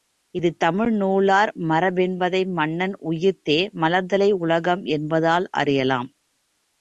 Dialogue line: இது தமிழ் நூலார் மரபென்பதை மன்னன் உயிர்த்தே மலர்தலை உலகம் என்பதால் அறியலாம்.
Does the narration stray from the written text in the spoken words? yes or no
no